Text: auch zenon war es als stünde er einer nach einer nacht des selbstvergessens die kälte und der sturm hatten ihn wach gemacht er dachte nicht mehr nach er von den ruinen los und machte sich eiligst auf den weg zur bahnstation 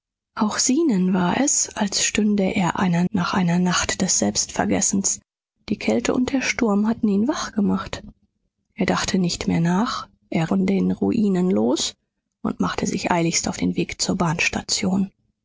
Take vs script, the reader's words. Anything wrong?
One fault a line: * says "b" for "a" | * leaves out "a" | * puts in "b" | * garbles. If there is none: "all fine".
all fine